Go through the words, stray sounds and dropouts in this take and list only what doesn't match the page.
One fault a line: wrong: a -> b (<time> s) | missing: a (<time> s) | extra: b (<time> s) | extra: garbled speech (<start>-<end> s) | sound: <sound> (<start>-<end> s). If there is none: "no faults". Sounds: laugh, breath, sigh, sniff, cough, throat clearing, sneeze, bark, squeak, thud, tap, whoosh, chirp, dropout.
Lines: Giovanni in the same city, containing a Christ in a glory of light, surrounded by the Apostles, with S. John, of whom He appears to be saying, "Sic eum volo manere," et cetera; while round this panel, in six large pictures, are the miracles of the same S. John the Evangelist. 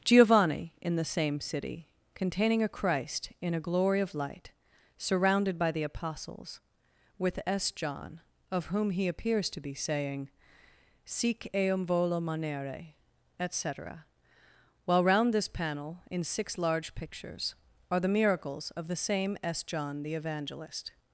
no faults